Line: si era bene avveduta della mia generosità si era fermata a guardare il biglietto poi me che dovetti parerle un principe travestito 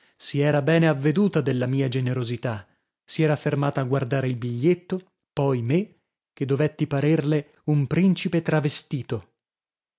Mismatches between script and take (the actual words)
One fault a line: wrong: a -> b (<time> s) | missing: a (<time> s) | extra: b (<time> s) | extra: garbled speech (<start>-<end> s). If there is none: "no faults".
no faults